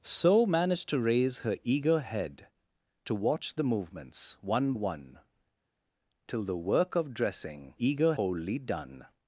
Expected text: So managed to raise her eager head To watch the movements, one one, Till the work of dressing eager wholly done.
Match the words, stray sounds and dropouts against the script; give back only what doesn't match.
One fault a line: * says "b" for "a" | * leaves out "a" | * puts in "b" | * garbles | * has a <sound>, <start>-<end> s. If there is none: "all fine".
all fine